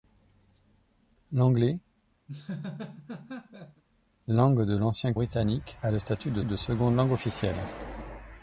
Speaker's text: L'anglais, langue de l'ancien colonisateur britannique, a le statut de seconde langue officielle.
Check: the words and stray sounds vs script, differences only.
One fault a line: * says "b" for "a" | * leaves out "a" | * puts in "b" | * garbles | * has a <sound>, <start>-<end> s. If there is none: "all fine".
* has a laugh, 2.3-3.8 s
* leaves out "colonisateur"
* puts in "de"